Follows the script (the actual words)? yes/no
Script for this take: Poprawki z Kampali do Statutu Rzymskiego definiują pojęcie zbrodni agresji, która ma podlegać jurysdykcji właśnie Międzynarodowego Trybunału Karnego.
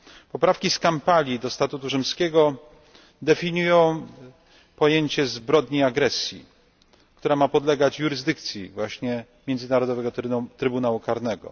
yes